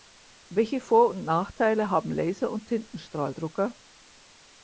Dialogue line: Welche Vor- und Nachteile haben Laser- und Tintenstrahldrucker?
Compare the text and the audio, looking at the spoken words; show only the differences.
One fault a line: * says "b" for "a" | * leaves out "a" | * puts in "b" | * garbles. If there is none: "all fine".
all fine